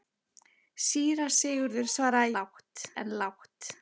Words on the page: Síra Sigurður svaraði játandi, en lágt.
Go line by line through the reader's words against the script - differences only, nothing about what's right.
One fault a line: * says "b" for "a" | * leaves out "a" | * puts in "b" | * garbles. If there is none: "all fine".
* says "lágt" for "játandi"